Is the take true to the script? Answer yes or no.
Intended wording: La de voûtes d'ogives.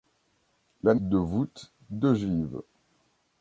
yes